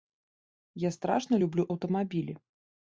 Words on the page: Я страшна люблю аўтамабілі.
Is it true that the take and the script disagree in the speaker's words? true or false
false